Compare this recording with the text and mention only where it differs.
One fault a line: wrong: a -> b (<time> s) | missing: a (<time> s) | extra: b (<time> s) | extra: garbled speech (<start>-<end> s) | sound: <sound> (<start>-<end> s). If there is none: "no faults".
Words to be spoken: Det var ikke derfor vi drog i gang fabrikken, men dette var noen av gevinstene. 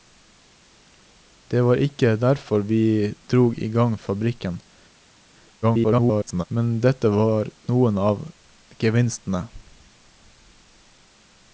extra: garbled speech (5.6-6.4 s)